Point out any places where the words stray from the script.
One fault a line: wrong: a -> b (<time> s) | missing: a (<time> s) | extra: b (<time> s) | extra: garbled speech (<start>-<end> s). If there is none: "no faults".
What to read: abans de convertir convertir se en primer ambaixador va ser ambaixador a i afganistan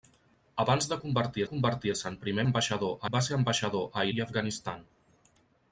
no faults